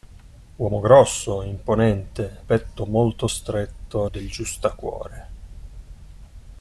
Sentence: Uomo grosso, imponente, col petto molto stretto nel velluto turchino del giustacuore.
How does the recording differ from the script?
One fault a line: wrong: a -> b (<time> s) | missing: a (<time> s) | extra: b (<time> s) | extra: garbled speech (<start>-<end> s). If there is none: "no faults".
missing: col (2.5 s)
missing: nel velluto turchino (4.1 s)